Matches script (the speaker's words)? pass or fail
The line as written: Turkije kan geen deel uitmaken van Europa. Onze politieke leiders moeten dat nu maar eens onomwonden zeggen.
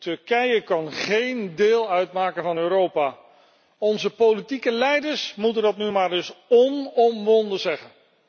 pass